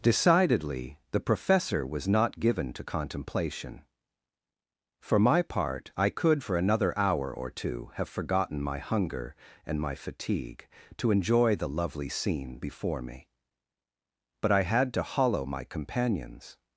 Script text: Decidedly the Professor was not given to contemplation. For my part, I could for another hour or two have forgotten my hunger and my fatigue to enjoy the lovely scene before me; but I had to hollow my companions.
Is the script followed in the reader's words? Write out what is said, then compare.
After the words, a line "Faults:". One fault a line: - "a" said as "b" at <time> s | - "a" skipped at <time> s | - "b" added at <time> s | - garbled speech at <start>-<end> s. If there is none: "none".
Decidedly the Professor was not given to contemplation. For my part, I could for another hour or two have forgotten my hunger and my fatigue to enjoy the lovely scene before me; but I had to hollow my companions.
Faults:
none